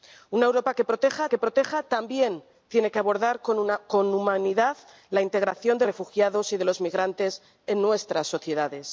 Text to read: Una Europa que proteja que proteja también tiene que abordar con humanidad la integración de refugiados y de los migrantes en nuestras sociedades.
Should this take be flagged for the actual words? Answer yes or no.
no